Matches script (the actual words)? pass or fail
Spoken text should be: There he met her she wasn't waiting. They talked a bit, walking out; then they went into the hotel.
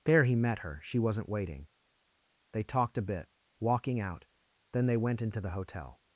pass